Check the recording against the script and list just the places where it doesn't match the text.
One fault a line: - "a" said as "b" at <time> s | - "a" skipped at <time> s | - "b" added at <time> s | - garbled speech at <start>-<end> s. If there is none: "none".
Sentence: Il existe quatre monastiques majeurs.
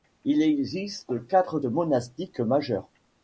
none